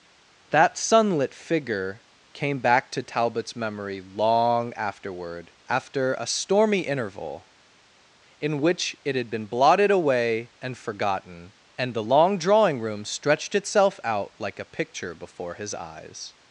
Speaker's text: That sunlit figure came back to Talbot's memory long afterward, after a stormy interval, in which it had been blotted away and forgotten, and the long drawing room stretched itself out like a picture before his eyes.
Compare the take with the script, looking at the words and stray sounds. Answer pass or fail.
pass